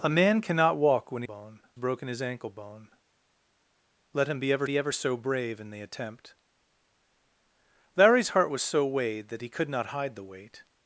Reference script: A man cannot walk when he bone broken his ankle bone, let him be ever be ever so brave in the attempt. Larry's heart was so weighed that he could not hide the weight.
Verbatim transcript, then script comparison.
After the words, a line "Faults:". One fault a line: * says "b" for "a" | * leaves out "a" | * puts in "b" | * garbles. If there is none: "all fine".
A man cannot walk when he bone broken his ankle bone, let him be ever be ever so brave in the attempt. Larry's heart was so weighed that he could not hide the weight.
Faults:
all fine